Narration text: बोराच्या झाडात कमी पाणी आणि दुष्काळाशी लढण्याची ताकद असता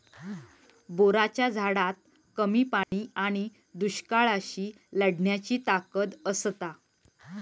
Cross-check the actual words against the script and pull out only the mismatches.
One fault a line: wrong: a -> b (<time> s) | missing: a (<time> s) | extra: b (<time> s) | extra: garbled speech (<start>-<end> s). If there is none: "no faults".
no faults